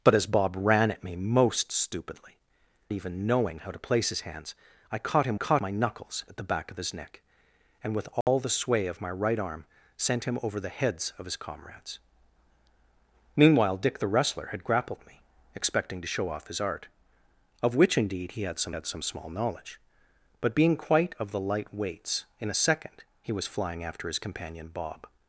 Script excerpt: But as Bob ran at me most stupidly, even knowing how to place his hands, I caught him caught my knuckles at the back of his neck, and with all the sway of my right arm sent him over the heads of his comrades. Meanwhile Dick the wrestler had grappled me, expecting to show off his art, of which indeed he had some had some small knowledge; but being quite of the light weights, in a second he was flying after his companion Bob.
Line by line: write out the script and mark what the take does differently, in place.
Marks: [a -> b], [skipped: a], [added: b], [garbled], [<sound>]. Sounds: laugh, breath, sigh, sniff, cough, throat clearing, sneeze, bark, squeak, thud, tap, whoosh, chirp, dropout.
But as Bob ran at me most stupidly, even knowing how to place his hands, I caught him caught my knuckles at the back of his neck, and with all [dropout] the sway of my right arm sent him over the heads of his comrades. Meanwhile Dick the wrestler had grappled me, expecting to show off his art, of which indeed he had some had some small knowledge; but being quite of the light weights, in a second he was flying after his companion Bob.